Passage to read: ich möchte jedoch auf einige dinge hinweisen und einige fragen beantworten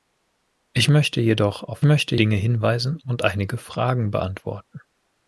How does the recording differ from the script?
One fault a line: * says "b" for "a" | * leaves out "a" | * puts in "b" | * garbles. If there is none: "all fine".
* says "möchte" for "einige"